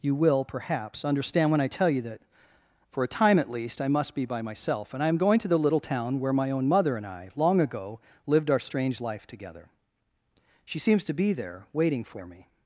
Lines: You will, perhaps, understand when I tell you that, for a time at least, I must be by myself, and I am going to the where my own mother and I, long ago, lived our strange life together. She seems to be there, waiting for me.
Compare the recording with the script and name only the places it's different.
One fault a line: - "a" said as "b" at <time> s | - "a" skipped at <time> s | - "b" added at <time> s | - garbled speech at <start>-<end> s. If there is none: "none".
- "little town" added at 5.6 s